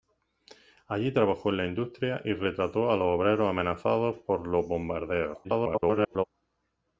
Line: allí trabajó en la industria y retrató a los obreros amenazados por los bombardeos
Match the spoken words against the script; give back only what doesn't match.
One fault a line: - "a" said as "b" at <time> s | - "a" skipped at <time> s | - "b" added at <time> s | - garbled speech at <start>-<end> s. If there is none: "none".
- garbled speech at 5.4-6.2 s